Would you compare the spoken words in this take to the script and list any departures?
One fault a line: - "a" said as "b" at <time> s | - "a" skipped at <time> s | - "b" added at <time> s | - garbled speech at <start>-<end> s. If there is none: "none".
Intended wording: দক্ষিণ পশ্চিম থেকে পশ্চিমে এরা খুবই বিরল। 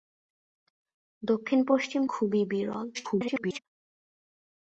- "থেকে পশ্চিমে এরা" skipped at 2.0 s
- garbled speech at 2.9-3.6 s